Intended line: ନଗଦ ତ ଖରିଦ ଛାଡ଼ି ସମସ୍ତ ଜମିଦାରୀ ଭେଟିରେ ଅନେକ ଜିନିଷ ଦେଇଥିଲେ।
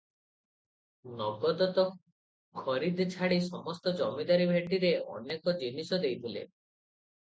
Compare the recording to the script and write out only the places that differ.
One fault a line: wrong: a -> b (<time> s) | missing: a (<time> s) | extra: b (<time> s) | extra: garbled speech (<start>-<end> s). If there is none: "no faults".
no faults